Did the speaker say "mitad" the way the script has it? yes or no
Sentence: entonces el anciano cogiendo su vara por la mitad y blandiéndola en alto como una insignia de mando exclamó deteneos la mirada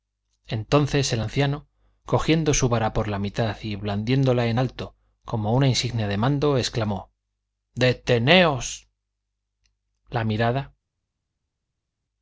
yes